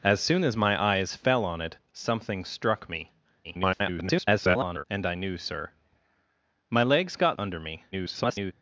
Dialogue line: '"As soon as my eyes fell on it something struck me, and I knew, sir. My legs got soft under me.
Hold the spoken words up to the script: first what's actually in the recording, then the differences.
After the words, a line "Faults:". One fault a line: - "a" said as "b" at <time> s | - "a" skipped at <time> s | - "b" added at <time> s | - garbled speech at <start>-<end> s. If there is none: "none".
'"As soon as my eyes fell on it something struck me, [garbled] and I knew, sir. My legs got under me. [garbled]
Faults:
- garbled speech at 3.4-4.8 s
- "soft" skipped at 7.4 s
- garbled speech at 7.9-8.5 s